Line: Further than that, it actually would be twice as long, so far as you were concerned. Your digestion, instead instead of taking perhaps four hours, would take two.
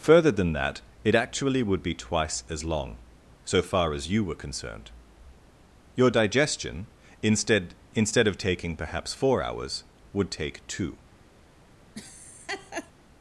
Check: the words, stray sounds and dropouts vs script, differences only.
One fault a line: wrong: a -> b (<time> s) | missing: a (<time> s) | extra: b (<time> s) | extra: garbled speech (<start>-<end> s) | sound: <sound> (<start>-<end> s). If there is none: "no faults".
sound: laugh (11.9-12.9 s)